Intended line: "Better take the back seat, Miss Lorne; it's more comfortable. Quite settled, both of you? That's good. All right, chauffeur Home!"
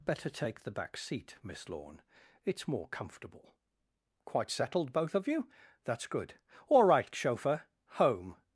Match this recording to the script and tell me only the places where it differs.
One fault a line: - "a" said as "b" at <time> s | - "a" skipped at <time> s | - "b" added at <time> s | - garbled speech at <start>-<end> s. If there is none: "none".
none